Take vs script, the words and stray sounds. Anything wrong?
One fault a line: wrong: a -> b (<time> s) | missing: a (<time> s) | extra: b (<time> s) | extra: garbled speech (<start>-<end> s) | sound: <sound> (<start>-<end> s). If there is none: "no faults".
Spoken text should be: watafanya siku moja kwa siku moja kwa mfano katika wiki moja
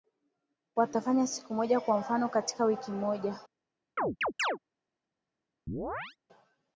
missing: siku moja kwa (2.0 s)
sound: chirp (4.0-4.6 s)
sound: chirp (5.7-6.2 s)